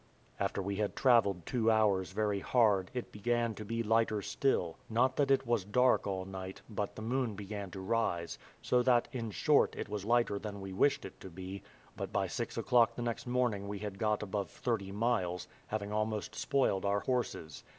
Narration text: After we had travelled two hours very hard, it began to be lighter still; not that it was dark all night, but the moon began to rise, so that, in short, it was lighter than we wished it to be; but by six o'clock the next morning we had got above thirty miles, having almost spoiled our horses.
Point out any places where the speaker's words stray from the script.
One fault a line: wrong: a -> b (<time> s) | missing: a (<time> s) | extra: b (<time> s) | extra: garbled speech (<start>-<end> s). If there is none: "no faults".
no faults